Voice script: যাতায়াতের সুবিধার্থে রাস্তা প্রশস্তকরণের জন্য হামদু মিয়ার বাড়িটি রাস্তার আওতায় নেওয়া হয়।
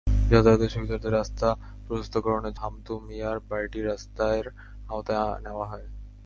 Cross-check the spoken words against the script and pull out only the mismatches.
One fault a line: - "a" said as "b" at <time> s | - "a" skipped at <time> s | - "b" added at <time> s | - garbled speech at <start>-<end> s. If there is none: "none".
- "জন্য" skipped at 2.6 s